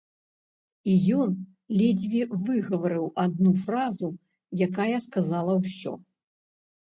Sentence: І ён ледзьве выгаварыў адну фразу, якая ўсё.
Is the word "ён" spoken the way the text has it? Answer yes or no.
yes